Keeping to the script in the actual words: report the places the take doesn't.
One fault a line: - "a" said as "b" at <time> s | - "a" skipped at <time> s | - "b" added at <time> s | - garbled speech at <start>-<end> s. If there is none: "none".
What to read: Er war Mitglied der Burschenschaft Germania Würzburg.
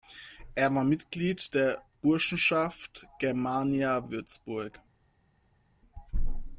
none